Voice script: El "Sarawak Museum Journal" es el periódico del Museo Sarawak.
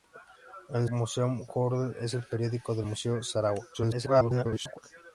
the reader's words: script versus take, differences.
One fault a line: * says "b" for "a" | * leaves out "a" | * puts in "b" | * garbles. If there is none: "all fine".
* leaves out "Sarawak"
* garbles